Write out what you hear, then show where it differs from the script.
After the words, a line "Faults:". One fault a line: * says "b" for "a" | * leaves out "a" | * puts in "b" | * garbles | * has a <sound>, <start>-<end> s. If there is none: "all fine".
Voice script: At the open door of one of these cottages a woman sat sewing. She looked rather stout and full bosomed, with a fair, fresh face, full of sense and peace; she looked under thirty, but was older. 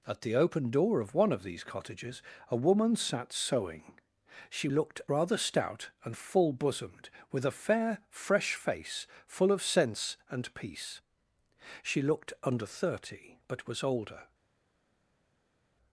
At the open door of one of these cottages a woman sat sewing. She looked rather stout and full bosomed, with a fair, fresh face, full of sense and peace; she looked under thirty, but was older.
Faults:
all fine